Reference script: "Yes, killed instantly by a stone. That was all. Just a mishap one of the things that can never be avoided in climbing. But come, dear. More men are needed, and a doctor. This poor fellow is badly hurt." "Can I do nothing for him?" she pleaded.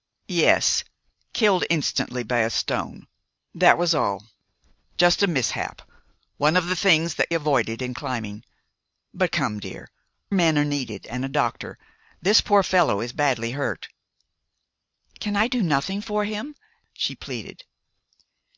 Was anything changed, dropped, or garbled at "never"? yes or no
yes